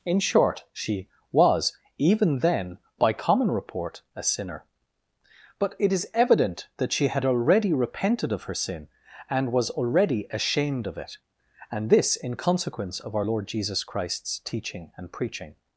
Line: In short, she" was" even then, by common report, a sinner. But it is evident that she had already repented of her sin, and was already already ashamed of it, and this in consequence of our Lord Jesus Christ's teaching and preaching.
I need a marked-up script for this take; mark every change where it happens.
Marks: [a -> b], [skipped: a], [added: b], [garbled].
In short, she" was" even then, by common report, a sinner. But it is evident that she had already repented of her sin, and was already [skipped: already] ashamed of it, and this in consequence of our Lord Jesus Christ's teaching and preaching.